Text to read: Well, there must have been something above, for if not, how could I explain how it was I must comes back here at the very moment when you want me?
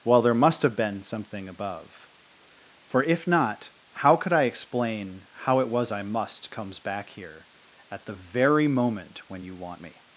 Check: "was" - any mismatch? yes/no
no